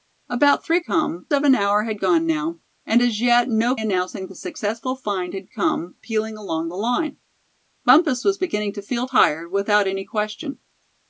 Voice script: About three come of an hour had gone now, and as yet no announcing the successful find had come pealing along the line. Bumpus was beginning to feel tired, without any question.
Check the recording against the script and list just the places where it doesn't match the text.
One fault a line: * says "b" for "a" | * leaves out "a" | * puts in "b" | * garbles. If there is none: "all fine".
all fine